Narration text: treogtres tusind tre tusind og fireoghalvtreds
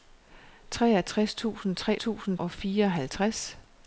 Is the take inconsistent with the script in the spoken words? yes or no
no